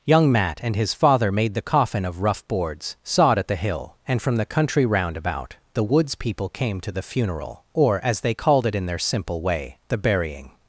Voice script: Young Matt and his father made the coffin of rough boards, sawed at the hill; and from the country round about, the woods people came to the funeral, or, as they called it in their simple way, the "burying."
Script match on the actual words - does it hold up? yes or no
yes